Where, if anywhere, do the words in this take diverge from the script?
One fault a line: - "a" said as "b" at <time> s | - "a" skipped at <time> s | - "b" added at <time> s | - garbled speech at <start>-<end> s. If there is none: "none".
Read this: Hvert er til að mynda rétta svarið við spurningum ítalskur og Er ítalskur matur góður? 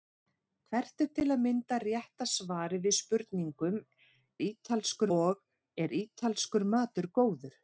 none